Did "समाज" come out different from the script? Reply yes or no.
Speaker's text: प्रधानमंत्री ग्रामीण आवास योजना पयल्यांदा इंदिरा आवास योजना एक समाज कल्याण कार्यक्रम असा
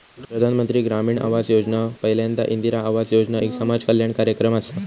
no